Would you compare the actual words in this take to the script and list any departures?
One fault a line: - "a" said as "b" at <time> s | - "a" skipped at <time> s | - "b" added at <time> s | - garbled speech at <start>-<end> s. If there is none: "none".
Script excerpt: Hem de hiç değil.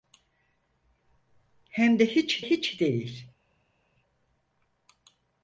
- "hiç" added at 2.4 s